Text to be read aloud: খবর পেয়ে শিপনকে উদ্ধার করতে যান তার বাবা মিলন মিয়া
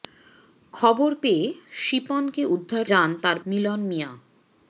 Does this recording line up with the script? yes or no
no